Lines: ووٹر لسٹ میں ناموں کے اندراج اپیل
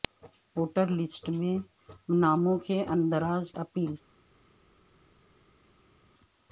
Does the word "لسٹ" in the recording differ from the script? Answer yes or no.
no